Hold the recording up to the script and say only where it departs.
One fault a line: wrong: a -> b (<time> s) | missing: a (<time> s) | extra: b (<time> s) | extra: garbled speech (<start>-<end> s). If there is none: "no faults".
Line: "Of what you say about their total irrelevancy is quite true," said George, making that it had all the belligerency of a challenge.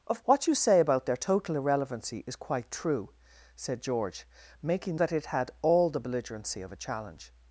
no faults